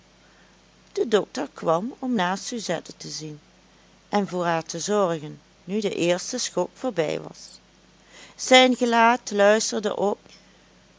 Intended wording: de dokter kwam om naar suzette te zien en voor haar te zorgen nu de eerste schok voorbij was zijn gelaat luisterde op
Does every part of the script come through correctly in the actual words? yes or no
yes